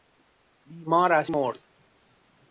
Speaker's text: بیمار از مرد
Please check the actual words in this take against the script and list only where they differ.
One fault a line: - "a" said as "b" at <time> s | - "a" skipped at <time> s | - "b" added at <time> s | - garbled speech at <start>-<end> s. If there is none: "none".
none